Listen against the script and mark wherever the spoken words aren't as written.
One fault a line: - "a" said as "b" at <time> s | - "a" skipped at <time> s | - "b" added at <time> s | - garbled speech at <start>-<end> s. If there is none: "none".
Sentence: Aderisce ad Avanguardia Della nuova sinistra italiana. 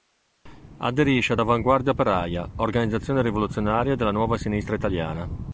- "Operaia organizzazione rivoluzionaria" added at 1.9 s